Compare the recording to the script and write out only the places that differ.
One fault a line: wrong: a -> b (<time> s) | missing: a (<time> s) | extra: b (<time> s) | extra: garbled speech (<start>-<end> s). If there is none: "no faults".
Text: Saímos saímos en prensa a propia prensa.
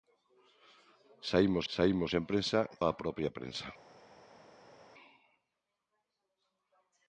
no faults